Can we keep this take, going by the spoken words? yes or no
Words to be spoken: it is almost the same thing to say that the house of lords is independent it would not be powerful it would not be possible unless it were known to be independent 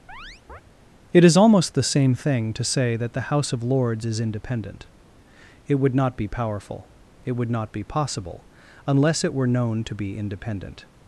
yes